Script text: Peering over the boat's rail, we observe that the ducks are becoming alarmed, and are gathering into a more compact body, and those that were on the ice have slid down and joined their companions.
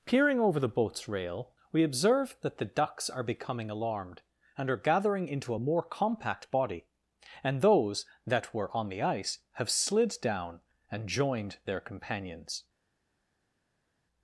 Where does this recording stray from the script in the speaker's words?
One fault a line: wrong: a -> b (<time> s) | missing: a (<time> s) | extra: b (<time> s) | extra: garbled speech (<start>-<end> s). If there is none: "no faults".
no faults